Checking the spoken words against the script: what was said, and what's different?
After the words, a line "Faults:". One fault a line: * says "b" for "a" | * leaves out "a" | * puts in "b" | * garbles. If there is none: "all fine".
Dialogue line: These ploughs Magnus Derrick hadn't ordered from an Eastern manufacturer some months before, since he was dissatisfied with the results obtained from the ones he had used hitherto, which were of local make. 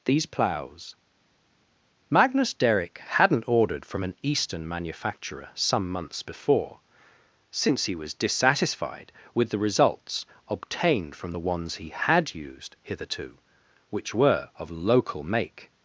These ploughs Magnus Derrick hadn't ordered from an Eastern manufacturer some months before, since he was dissatisfied with the results obtained from the ones he had used hitherto, which were of local make.
Faults:
all fine